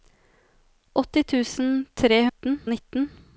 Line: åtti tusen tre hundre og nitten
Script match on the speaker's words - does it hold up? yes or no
no